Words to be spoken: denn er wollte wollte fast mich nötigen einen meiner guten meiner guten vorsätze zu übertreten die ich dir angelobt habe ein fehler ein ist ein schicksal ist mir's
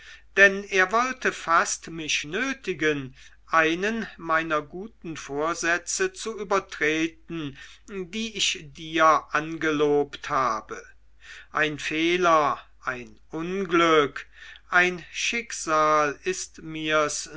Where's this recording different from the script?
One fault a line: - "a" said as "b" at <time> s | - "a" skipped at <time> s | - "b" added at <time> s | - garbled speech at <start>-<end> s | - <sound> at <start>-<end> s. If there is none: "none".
- "wollte" skipped at 1.3 s
- "meiner guten" skipped at 5.2 s
- "ist" said as "unglück" at 13.3 s